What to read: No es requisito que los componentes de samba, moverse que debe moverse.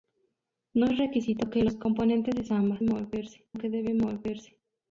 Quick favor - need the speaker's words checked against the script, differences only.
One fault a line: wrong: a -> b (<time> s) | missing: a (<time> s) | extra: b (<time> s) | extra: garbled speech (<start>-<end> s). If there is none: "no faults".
no faults